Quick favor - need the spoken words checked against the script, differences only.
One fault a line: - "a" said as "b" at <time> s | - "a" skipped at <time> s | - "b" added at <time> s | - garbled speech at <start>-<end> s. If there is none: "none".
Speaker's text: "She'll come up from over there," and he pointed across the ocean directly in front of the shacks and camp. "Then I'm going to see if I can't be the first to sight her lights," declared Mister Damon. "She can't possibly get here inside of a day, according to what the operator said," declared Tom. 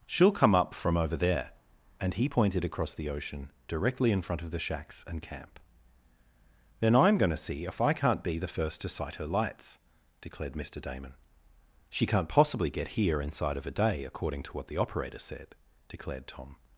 none